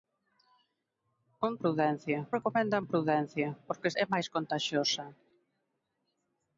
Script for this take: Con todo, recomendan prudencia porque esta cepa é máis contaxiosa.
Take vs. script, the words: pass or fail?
fail